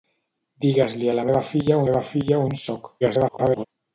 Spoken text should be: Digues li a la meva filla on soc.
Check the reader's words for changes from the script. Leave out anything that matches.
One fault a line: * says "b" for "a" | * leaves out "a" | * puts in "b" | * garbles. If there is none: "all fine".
* puts in "meva filla"
* garbles